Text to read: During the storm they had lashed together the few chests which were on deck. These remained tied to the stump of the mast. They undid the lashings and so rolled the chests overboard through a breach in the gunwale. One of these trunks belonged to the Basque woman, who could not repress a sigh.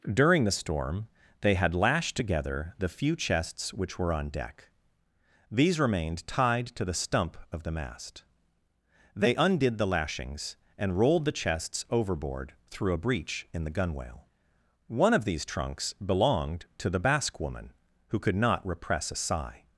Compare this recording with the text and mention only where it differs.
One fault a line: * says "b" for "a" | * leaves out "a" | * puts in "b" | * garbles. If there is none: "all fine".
* leaves out "so"